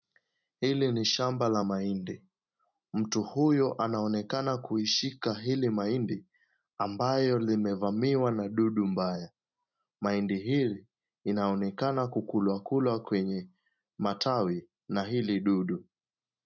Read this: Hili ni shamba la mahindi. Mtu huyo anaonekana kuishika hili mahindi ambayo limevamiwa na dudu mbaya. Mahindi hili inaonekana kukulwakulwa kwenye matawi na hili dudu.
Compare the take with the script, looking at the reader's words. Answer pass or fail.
pass